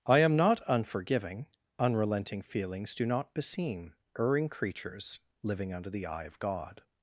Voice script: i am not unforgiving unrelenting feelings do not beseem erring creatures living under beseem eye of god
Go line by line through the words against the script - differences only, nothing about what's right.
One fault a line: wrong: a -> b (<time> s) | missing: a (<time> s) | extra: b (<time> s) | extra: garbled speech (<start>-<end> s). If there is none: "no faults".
wrong: beseem -> the (5.9 s)